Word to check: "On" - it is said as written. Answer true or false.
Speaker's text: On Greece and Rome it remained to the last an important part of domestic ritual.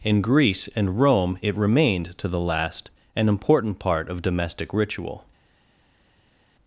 false